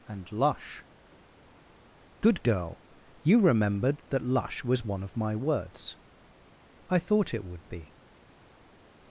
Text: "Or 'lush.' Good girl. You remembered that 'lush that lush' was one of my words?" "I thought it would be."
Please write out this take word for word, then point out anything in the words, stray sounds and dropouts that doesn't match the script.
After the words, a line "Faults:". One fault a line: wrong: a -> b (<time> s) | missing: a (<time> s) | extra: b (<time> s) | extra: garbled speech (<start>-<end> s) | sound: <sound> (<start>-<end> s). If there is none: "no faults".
"And 'lush.' Good girl. You remembered that 'lush' was one of my words?" "I thought it would be."
Faults:
wrong: Or -> And (0.1 s)
missing: that lush (4.6 s)